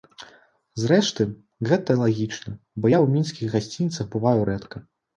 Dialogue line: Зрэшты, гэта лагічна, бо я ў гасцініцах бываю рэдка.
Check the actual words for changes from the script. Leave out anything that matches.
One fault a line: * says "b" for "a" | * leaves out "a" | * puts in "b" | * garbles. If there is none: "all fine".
* puts in "мінскіх"